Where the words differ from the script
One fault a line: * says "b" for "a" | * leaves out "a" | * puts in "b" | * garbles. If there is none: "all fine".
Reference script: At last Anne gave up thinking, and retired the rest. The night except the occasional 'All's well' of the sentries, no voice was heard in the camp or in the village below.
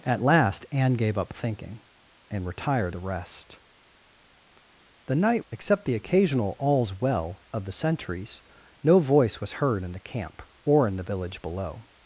all fine